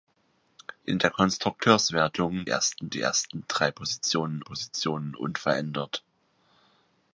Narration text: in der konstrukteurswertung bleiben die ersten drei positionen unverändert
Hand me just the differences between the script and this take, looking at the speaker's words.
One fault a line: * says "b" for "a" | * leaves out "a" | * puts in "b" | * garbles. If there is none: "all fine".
* says "ersten" for "bleiben"
* puts in "positionen"